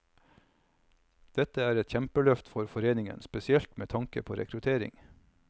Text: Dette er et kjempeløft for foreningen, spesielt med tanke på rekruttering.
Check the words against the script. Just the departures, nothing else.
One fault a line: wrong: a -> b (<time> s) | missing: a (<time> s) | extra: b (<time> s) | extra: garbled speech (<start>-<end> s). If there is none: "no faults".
no faults